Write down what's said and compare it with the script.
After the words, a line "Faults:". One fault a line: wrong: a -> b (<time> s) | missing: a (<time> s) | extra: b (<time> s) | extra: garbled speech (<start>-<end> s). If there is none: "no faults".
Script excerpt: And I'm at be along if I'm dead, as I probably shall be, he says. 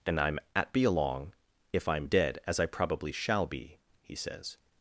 And I'm at be along if I'm dead, as I probably shall be, he says.
Faults:
no faults